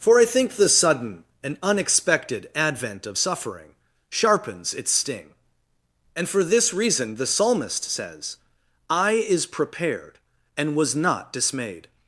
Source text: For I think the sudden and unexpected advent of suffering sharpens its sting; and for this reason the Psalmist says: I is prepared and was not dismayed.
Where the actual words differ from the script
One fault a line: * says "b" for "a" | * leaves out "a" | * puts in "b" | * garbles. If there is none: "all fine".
all fine